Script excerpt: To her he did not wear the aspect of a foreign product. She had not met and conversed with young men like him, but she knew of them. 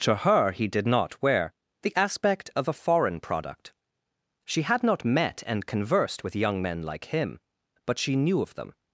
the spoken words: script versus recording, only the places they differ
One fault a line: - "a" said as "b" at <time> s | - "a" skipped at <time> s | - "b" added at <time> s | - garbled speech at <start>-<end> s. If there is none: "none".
none